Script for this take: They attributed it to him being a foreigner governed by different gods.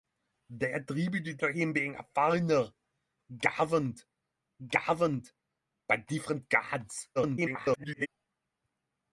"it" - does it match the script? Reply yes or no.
no